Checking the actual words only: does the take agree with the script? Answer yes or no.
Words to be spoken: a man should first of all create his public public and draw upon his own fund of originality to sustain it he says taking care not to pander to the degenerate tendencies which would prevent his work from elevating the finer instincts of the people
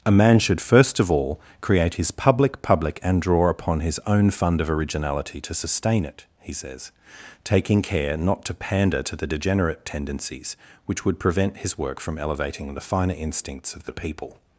yes